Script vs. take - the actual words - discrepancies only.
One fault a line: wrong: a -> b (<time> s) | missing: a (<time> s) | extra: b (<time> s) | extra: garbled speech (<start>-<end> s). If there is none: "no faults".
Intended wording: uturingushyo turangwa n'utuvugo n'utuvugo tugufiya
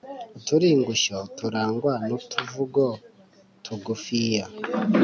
missing: n'utuvugo (2.9 s)